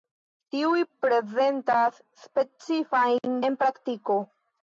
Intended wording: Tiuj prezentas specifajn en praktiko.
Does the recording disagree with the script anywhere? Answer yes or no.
no